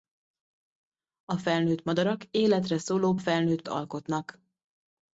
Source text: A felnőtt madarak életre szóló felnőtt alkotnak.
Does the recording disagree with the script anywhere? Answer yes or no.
no